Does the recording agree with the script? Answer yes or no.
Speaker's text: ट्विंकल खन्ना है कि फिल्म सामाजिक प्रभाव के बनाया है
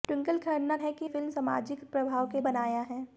yes